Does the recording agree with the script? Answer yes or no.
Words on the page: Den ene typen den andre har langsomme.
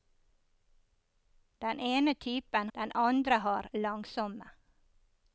yes